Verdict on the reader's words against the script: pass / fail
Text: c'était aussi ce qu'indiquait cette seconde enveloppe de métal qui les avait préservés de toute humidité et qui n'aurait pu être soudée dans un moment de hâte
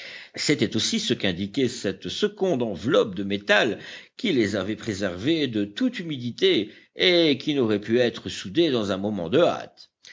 pass